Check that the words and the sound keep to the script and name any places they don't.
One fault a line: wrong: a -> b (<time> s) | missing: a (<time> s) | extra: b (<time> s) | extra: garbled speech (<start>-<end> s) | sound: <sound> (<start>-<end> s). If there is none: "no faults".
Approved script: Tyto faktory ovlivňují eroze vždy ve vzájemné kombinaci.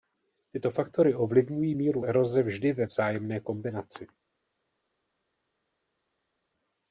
extra: míru (1.7 s)